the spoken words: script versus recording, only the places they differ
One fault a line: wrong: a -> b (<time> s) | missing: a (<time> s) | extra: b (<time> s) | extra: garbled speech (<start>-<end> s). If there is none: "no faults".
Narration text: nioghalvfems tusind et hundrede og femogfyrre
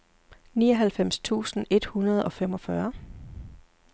no faults